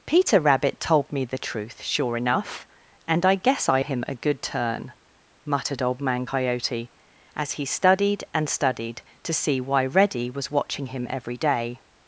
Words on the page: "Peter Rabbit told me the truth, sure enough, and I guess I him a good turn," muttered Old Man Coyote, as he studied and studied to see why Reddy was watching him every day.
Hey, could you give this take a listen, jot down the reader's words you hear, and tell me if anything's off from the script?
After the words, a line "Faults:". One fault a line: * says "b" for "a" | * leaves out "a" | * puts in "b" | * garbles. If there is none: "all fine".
"Peter Rabbit told me the truth, sure enough, and I guess I him a good turn," muttered Old Man Coyote, as he studied and studied to see why Reddy was watching him every day.
Faults:
all fine